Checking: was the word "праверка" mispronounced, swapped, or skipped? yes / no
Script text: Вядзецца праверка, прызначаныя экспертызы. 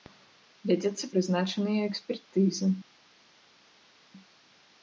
yes